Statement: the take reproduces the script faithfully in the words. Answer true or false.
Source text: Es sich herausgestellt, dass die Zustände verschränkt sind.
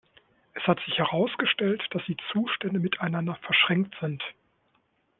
false